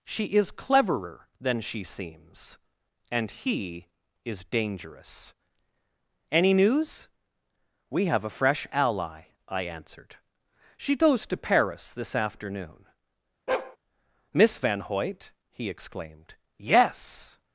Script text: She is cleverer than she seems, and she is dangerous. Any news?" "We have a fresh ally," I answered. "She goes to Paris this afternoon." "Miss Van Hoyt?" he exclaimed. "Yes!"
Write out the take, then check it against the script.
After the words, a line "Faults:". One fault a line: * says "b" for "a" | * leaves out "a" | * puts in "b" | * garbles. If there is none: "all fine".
She is cleverer than she seems, and he is dangerous. Any news?" "We have a fresh ally," I answered. "She goes to Paris this afternoon." "Miss Van Hoyt?" he exclaimed. "Yes!"
Faults:
* says "he" for "she"